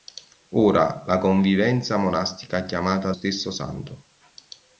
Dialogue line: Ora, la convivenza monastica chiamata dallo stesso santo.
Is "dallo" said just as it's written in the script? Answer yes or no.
no